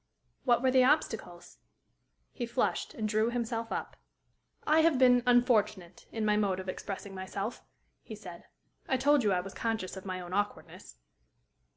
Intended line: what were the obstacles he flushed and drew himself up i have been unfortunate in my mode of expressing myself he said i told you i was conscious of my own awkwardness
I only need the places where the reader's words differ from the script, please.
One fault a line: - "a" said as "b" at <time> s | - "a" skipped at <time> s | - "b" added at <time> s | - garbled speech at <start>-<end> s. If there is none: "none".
none